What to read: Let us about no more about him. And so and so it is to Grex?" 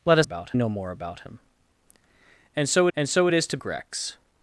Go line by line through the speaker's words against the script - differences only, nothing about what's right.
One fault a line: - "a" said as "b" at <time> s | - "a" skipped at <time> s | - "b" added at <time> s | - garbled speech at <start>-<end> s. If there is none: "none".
none